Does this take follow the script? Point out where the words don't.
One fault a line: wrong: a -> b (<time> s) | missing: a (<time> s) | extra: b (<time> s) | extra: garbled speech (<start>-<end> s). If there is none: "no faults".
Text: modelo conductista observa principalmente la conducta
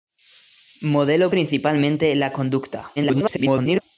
missing: conductista observa (1.3 s)
extra: garbled speech (3.0-3.8 s)